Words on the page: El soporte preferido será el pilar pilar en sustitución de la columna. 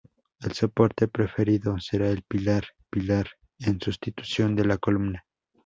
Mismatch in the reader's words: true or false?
false